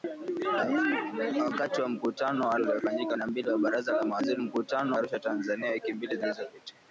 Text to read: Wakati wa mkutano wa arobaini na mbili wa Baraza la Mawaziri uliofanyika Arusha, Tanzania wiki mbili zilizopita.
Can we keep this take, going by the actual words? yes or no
no